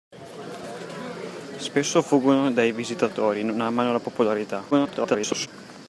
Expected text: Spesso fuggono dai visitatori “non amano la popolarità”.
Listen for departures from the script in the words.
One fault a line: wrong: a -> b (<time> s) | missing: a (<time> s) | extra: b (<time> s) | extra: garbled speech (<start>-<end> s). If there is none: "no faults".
extra: garbled speech (4.7-5.5 s)